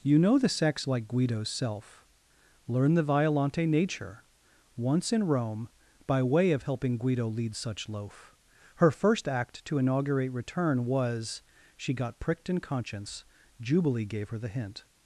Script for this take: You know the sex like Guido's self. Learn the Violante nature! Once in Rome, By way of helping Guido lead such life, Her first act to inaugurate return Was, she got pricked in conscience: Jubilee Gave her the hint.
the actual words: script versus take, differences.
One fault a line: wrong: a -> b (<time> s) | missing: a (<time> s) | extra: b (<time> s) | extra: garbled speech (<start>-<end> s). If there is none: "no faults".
wrong: life -> loaf (7.9 s)